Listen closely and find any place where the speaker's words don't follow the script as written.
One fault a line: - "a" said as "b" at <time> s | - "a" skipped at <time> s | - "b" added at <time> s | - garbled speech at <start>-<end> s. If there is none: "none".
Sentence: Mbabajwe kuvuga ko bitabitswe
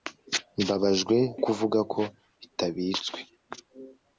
none